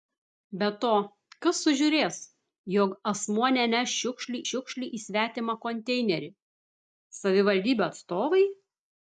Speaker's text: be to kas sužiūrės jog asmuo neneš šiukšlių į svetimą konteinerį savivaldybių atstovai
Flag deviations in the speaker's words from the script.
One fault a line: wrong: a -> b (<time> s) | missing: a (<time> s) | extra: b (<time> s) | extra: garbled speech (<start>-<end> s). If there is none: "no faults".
extra: šiukšlių (4.5 s)